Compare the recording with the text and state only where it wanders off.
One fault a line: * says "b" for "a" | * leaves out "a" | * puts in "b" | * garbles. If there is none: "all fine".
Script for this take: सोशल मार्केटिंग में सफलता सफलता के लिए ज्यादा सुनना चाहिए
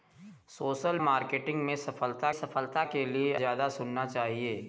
all fine